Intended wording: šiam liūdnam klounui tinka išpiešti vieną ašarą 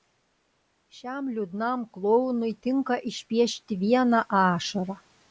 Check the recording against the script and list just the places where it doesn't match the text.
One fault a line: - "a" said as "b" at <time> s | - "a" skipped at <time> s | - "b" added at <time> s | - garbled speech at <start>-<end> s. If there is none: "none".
none